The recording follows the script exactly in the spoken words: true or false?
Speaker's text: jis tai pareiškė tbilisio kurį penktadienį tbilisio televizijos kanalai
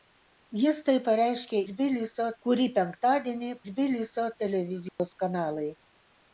true